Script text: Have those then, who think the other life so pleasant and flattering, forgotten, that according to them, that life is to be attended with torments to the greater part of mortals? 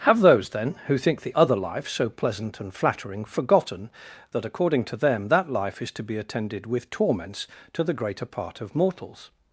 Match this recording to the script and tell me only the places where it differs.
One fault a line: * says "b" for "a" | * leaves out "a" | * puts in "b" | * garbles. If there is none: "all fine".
all fine